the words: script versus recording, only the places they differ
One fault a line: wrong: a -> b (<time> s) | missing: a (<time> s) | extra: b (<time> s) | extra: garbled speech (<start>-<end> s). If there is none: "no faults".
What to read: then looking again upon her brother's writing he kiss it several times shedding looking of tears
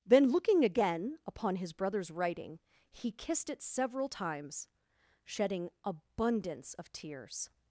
wrong: her -> his (1.6 s)
wrong: kiss -> kissed (3.1 s)
wrong: looking -> abundance (5.8 s)